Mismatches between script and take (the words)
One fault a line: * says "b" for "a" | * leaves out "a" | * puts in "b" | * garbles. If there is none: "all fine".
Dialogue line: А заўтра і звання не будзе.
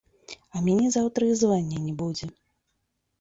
* puts in "мяне"